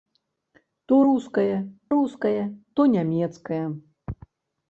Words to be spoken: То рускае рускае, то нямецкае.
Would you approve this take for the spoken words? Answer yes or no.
yes